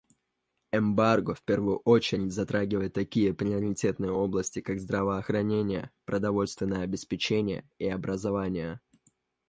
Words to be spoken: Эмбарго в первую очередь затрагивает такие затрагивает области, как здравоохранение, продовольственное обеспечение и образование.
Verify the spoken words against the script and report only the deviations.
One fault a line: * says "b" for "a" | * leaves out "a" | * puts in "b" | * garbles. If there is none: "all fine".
* says "приоритетные" for "затрагивает"